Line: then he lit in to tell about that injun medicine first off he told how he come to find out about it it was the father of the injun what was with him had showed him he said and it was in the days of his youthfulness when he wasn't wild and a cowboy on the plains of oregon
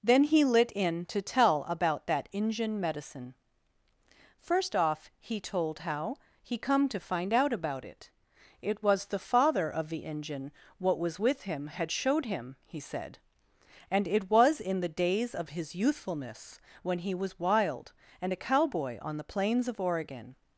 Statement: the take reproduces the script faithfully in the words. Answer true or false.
false